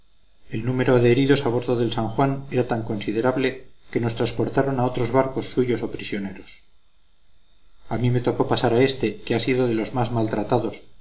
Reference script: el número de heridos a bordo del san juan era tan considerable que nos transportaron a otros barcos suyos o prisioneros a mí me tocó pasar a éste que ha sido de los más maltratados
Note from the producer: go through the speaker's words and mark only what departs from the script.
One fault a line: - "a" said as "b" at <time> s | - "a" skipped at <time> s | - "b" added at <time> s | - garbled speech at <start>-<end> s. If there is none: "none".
none